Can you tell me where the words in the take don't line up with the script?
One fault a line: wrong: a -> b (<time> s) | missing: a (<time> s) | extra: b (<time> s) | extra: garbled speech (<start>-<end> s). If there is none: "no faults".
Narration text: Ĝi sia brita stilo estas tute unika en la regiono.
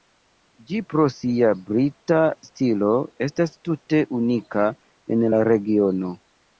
extra: pro (0.9 s)